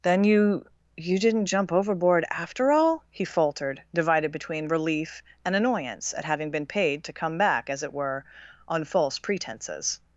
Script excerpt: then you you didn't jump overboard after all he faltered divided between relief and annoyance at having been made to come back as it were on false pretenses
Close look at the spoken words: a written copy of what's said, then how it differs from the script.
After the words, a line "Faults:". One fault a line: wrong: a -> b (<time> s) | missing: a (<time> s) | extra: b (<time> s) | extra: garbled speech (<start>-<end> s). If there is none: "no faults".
then you you didn't jump overboard after all he faltered divided between relief and annoyance at having been paid to come back as it were on false pretenses
Faults:
wrong: made -> paid (6.7 s)